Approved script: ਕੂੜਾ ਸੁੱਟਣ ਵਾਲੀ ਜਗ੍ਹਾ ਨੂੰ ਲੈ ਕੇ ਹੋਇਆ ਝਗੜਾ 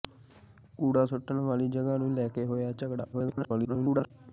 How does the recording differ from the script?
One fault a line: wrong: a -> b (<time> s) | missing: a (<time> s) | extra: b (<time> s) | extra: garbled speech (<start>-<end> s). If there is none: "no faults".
extra: garbled speech (3.1-4.1 s)